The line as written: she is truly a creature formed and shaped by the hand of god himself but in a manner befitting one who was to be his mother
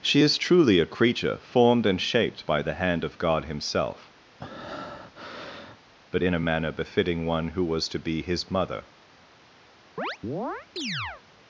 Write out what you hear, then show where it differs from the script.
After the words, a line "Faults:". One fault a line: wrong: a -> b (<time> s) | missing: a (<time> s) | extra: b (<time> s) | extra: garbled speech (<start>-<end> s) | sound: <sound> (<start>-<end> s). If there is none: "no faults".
she is truly a creature formed and shaped by the hand of god himself but in a manner befitting one who was to be his mother
Faults:
sound: breath (4.4-5.8 s)
sound: chirp (10.0-11.2 s)